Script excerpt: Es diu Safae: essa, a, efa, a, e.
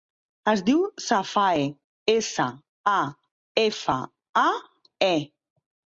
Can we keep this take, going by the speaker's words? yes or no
yes